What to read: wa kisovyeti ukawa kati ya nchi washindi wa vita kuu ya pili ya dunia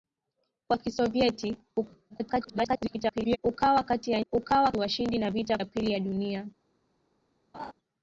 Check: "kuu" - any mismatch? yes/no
yes